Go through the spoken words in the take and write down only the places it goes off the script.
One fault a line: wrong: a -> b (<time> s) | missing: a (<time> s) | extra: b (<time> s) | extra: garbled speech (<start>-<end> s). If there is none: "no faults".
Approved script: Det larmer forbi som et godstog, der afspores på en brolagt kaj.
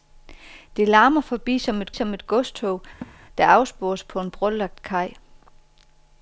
extra: som et (1.9 s)